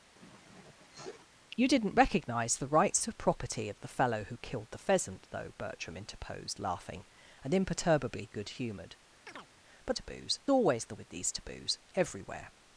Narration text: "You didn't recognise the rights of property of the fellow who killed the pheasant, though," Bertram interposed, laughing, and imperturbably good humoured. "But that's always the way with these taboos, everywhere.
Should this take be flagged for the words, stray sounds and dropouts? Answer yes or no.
yes